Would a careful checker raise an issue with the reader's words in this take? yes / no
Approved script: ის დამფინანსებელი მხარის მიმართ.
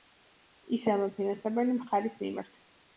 no